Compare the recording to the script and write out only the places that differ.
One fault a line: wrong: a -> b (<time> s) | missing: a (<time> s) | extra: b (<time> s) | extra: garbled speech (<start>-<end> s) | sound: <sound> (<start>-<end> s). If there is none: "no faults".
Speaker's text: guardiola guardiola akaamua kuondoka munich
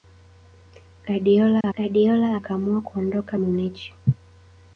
sound: dropout (1.6-1.6 s)